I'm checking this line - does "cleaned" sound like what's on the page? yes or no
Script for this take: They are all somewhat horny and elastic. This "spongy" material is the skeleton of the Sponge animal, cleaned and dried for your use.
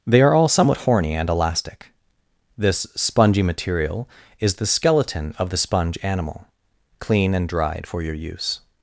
no